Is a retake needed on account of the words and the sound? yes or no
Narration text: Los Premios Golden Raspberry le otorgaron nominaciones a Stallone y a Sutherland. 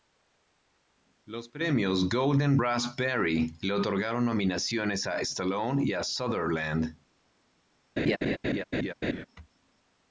yes